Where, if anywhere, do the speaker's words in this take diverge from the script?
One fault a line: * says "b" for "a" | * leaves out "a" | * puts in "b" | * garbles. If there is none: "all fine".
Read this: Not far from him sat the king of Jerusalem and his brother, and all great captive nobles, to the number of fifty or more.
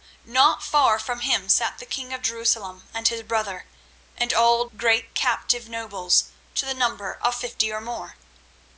all fine